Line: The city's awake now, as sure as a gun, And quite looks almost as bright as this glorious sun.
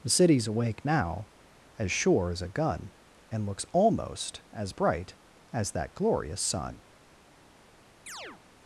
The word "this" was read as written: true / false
false